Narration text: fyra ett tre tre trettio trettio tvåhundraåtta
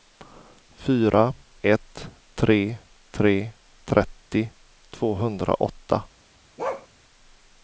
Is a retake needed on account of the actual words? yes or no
yes